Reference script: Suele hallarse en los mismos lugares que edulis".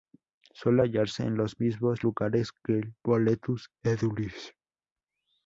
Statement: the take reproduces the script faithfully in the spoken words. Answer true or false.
false